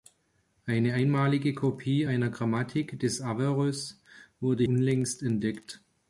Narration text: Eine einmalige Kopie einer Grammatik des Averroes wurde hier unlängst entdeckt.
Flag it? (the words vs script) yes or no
yes